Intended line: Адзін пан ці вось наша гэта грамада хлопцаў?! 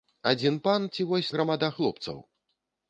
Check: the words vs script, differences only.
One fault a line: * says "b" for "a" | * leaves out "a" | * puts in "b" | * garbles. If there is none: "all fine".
* leaves out "наша гэта"